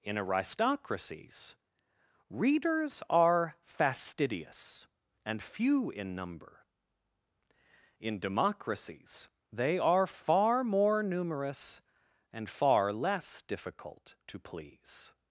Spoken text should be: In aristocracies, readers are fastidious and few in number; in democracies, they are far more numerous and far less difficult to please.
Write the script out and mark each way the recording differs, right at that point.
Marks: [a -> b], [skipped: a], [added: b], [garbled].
In aristocracies, readers are fastidious and few in number; in democracies, they are far more numerous and far less difficult to please.